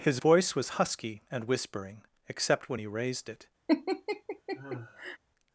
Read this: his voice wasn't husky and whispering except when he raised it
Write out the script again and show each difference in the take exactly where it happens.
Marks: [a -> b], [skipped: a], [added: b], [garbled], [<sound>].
his voice [wasn't -> was] husky and whispering except when he raised it [laugh]